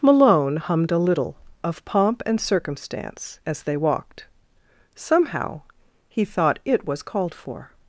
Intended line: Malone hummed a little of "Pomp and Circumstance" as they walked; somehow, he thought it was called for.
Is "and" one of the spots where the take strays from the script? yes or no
no